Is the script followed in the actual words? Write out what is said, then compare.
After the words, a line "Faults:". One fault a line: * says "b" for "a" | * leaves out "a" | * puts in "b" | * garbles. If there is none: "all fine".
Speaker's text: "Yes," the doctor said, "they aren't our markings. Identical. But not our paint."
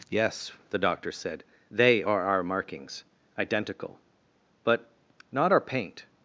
"Yes," the doctor said, "they are our markings. Identical. But not our paint."
Faults:
* says "are" for "aren't"